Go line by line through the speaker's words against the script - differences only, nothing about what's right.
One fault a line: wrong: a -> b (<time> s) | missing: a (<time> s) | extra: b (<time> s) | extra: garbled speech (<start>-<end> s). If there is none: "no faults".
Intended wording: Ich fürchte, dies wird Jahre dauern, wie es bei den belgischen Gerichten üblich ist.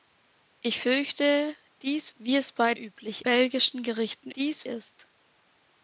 missing: wird Jahre dauern (2.1 s)
wrong: den -> üblich (2.7 s)
wrong: üblich -> dies (4.4 s)